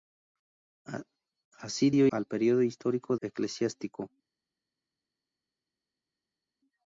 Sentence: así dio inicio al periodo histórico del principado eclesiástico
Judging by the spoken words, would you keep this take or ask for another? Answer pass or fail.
fail